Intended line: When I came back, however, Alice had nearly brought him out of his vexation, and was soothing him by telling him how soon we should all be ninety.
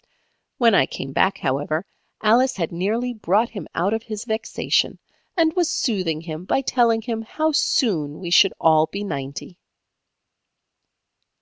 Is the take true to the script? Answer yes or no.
yes